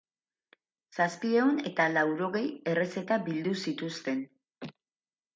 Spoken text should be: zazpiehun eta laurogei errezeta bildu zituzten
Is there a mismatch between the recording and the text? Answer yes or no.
no